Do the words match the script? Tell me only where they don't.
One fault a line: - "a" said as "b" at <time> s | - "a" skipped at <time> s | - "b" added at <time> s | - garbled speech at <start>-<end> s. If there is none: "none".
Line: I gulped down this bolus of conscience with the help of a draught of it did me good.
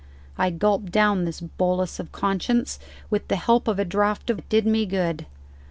none